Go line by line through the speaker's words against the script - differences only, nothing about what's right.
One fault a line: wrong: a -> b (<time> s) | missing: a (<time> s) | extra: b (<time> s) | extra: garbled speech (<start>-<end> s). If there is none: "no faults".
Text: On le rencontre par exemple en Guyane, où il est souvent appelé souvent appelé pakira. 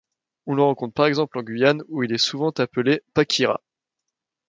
missing: souvent appelé (3.0 s)